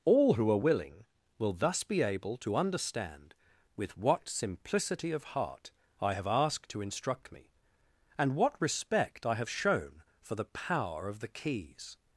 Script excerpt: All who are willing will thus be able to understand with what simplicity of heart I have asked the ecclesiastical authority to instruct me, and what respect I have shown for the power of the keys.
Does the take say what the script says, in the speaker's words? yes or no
no